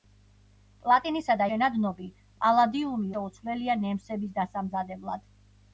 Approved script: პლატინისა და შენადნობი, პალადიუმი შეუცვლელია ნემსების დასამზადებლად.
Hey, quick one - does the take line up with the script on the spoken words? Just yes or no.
yes